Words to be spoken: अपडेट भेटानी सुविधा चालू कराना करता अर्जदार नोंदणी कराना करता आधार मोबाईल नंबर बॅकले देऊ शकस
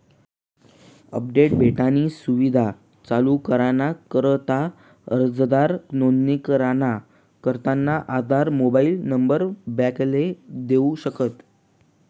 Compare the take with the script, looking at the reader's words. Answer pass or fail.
pass